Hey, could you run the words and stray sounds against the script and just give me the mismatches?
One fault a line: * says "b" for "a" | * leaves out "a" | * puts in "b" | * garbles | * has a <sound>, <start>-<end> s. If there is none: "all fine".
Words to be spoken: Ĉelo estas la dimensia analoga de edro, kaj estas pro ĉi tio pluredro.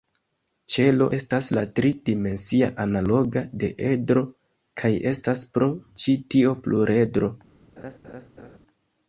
* puts in "tri"
* has a laugh, 7.8-8.6 s